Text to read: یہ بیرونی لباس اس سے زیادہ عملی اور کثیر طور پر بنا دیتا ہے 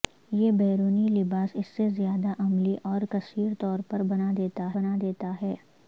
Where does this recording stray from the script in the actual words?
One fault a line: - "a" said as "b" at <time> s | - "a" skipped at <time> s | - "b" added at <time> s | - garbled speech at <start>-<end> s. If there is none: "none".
- "بنا دیتا" added at 4.7 s